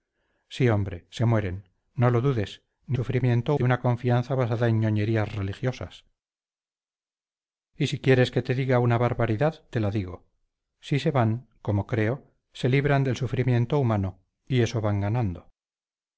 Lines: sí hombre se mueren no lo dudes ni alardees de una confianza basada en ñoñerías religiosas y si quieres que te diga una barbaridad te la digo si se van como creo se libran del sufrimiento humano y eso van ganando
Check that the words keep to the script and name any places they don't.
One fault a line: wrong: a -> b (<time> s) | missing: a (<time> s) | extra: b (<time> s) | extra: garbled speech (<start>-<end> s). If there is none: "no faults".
wrong: alardees -> sufrimiento (2.9 s)